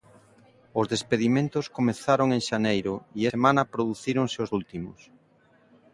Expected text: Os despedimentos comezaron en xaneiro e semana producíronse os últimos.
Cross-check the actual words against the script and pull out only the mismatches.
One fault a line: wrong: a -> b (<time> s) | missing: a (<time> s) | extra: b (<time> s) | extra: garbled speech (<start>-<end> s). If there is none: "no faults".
no faults